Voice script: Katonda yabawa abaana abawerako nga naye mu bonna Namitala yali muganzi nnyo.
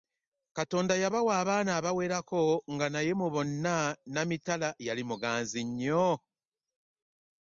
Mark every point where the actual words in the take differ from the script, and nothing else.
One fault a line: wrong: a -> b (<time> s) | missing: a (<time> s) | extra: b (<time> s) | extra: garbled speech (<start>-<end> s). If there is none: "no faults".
no faults